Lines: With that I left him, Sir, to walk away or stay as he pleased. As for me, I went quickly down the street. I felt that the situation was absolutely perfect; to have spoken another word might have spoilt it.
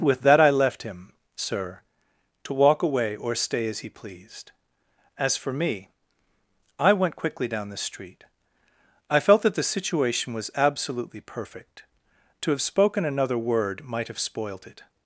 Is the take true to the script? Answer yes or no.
yes